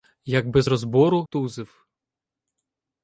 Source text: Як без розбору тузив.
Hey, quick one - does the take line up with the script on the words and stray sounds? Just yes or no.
yes